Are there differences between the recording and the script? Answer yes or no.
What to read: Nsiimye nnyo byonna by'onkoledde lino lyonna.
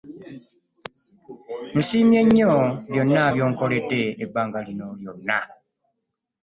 yes